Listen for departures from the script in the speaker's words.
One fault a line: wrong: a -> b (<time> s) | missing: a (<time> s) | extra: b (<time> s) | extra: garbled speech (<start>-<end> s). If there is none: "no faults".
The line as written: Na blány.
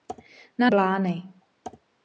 no faults